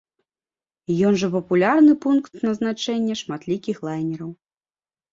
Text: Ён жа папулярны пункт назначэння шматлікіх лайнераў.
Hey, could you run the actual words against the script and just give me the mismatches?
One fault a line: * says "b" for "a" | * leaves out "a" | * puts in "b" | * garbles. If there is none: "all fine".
all fine